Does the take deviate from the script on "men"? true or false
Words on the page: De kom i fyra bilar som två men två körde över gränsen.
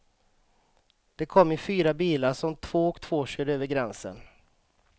true